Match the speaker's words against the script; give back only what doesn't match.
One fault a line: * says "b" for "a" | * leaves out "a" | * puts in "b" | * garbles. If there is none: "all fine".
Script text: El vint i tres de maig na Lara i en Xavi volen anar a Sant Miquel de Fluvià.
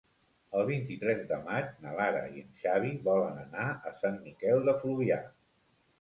all fine